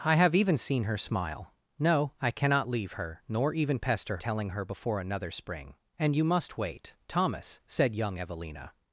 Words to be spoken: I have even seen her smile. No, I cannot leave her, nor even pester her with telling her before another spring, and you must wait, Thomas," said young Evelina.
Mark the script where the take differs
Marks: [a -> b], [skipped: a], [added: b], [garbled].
I have even seen her smile. No, I cannot leave her, nor even pester [skipped: her with] telling her before another spring, and you must wait, Thomas," said young Evelina.